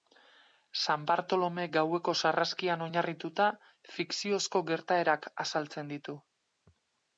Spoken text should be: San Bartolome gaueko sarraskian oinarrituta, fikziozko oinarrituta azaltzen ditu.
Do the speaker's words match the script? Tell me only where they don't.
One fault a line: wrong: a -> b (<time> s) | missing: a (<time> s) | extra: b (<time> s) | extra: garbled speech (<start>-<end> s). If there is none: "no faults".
wrong: oinarrituta -> gertaerak (4.8 s)